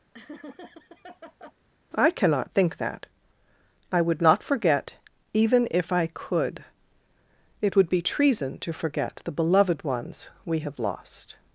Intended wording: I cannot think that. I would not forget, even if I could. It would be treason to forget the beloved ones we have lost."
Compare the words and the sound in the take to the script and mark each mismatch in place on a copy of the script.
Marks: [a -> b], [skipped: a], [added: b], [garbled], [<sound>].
[laugh] I cannot think that. I would not forget, even if I could. It would be treason to forget the beloved ones we have lost."